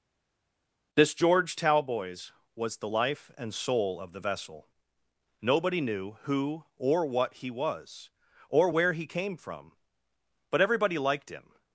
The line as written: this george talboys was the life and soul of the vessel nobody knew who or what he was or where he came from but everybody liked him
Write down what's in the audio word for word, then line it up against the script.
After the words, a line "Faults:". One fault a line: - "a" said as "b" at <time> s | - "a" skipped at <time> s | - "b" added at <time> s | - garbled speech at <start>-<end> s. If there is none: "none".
this george talboys was the life and soul of the vessel nobody knew who or what he was or where he came from but everybody liked him
Faults:
none